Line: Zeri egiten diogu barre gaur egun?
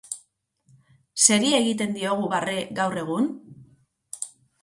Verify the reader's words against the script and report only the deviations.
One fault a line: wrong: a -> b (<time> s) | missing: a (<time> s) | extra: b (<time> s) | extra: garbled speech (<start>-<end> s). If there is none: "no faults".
no faults